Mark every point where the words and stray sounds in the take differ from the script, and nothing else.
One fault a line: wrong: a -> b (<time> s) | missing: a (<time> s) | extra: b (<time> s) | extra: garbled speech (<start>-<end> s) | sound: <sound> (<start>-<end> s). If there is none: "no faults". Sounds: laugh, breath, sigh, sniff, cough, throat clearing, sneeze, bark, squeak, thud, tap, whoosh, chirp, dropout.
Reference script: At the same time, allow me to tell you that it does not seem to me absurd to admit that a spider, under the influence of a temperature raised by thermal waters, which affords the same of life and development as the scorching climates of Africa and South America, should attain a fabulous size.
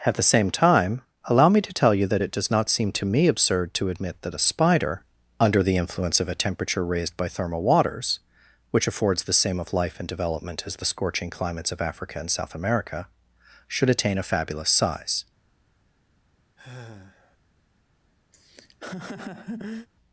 sound: sigh (16.6-17.4 s)
sound: laugh (18.3-19.9 s)